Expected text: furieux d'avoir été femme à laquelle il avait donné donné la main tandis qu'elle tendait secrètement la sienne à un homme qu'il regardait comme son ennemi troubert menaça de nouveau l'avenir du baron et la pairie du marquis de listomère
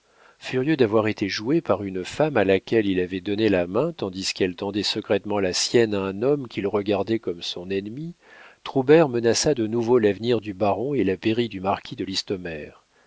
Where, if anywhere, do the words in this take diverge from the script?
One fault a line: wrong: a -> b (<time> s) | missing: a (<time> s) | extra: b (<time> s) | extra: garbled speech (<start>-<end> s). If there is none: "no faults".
extra: joué par une (1.3 s)
missing: donné (3.5 s)